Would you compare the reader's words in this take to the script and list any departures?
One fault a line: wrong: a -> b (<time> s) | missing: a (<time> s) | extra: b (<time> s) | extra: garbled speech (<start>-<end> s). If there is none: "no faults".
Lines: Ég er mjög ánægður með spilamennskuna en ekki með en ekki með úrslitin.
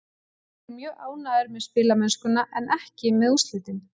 missing: en ekki með (3.4 s)